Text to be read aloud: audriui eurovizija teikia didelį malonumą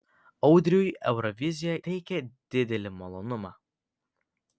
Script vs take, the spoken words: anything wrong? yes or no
no